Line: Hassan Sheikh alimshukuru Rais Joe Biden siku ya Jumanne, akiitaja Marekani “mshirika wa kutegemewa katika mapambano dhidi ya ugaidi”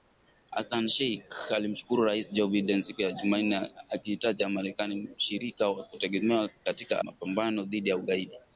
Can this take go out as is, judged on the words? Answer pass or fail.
pass